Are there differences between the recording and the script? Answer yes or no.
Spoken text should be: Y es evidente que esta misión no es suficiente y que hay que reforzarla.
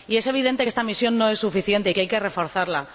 no